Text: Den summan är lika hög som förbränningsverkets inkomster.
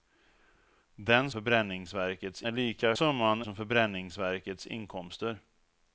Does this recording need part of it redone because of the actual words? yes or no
yes